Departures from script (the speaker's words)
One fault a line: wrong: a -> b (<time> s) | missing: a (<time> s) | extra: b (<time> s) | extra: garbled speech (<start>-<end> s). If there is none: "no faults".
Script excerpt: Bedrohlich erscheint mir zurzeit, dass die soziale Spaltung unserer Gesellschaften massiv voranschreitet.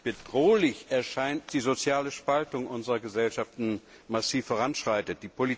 missing: mir zurzeit dass (1.5 s)